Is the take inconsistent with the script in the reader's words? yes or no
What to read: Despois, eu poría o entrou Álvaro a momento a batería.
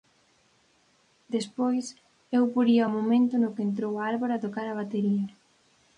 yes